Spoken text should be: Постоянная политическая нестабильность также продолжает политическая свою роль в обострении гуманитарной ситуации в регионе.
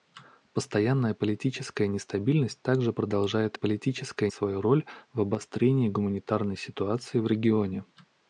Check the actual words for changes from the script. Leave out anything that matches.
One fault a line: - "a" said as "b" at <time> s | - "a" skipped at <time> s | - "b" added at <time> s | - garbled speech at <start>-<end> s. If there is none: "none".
none